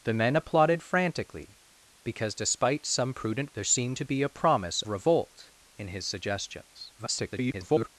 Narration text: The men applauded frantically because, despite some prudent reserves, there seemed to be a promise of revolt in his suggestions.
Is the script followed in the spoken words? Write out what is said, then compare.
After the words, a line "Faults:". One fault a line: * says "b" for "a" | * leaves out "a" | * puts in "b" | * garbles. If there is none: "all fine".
The men applauded frantically because, despite some prudent there seemed to be a promise revolt in his suggestions. [garbled]
Faults:
* leaves out "reserves"
* leaves out "of"
* garbles